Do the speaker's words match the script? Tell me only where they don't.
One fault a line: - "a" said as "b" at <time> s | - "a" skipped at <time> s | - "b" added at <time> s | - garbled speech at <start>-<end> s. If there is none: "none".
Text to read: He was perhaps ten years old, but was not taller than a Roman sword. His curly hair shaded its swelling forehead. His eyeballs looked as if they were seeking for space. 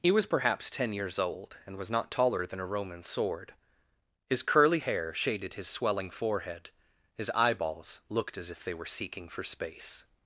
- "but" said as "and" at 1.6 s
- "its" said as "his" at 5.5 s